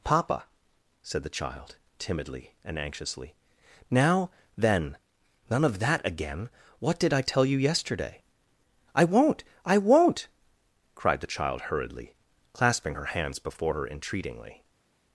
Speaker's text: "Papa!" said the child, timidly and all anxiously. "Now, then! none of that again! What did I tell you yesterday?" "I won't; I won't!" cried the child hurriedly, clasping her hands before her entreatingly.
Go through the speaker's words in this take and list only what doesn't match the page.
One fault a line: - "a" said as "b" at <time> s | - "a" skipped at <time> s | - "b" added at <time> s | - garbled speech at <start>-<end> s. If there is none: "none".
- "all" skipped at 2.8 s